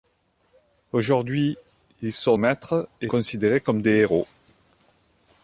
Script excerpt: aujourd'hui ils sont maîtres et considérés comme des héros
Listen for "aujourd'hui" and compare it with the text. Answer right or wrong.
right